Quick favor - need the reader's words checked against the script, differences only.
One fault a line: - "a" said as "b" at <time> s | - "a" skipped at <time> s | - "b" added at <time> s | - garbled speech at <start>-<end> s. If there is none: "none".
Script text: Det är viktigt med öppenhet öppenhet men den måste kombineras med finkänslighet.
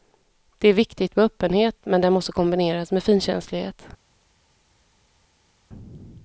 - "öppenhet" skipped at 1.8 s